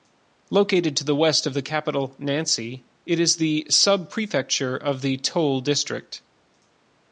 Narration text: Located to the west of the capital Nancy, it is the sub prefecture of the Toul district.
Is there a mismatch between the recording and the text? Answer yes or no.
no